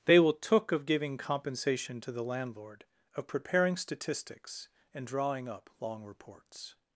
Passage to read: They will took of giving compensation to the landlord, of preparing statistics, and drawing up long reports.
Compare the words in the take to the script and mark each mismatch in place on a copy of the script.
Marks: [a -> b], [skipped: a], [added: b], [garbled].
They will took of giving compensation to the landlord, of preparing statistics, and drawing up long reports.